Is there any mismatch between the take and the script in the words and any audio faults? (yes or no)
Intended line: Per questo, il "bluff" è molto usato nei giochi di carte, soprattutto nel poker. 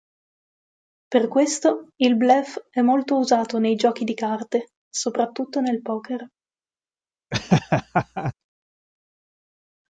yes